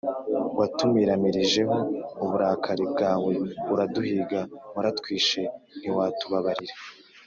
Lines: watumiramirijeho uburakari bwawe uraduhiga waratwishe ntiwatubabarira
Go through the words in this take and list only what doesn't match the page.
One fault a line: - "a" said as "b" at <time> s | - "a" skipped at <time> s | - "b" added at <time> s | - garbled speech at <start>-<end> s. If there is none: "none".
none